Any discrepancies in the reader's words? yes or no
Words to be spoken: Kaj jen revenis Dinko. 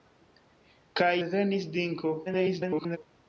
yes